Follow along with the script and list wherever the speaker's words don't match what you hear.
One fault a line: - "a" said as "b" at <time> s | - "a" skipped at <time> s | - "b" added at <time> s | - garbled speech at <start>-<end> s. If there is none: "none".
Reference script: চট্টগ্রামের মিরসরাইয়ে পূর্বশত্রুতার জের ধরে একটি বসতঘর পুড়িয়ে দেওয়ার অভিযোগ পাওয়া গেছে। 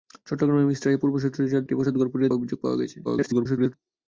- "ধরে" skipped at 1.6 s
- "দেওয়ার" skipped at 2.3 s
- garbled speech at 3.0-3.7 s